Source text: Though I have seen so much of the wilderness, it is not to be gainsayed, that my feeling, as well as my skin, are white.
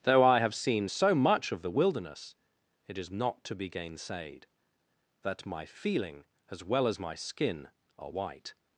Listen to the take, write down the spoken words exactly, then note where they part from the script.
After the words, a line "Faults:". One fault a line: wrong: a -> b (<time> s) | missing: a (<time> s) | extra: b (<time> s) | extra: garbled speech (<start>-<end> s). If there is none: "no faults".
Though I have seen so much of the wilderness, it is not to be gainsayed, that my feeling, as well as my skin, are white.
Faults:
no faults